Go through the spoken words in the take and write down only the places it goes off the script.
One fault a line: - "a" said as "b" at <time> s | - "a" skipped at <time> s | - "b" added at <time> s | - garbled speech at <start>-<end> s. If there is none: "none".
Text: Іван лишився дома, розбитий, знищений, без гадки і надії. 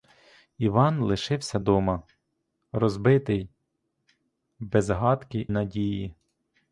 - "знищений" skipped at 3.5 s
- "і" skipped at 5.5 s